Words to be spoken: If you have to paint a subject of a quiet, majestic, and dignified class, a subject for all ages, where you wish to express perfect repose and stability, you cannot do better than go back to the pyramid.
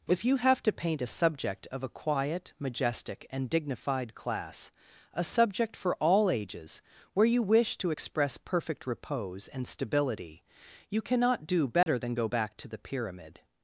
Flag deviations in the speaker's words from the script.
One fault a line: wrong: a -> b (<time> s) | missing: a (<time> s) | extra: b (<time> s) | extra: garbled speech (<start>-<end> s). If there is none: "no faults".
no faults